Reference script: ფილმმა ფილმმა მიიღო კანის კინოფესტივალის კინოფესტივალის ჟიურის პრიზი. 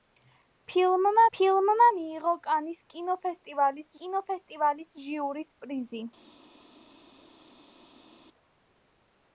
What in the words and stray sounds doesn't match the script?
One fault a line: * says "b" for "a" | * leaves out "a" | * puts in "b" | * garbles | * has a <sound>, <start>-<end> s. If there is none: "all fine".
all fine